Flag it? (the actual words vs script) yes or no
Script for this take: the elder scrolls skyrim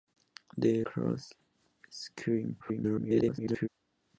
yes